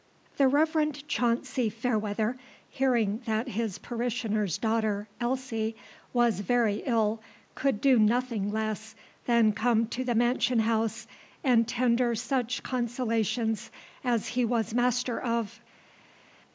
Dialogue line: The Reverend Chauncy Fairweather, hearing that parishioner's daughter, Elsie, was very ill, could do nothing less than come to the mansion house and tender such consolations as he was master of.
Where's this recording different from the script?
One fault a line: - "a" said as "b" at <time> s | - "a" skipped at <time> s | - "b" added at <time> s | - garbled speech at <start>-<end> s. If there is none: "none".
- "his" added at 3.5 s